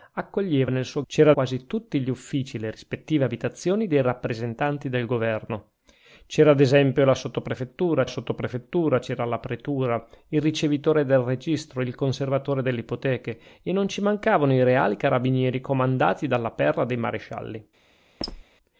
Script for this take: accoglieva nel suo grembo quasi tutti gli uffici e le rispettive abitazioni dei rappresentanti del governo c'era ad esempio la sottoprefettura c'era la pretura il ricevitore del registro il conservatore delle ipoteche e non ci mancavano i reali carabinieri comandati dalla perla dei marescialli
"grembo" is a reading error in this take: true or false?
true